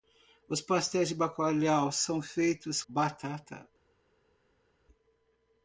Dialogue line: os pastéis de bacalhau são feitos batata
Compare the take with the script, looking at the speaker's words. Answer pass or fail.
pass